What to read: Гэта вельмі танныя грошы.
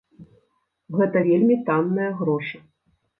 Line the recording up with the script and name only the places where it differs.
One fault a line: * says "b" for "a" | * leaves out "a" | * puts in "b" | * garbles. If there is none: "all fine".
all fine